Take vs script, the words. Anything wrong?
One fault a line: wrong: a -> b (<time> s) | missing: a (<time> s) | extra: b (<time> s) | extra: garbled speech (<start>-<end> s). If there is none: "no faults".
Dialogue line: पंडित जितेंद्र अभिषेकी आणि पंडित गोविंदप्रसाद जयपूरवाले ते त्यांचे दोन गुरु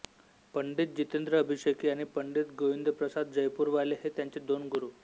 wrong: ते -> हे (4.0 s)